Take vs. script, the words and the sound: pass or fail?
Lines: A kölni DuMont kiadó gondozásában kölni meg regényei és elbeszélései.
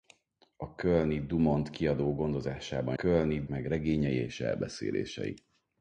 pass